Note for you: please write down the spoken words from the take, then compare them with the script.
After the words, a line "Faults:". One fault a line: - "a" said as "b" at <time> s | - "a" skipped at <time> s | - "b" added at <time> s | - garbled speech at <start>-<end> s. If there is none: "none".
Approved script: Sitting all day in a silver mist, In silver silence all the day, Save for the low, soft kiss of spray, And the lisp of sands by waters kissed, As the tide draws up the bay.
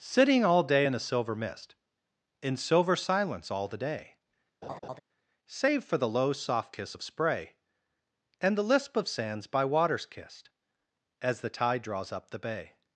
Sitting all day in a silver mist, In silver silence all the day, Save for the low, soft kiss of spray, And the lisp of sands by waters kissed, As the tide draws up the bay.
Faults:
none